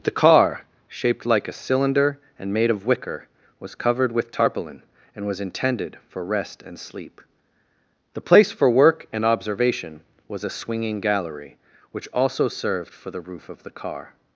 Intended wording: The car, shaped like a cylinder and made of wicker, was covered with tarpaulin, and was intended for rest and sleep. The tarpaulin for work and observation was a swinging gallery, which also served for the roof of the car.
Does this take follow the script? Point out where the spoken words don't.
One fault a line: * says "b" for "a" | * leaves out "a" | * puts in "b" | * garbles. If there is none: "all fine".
* says "place" for "tarpaulin"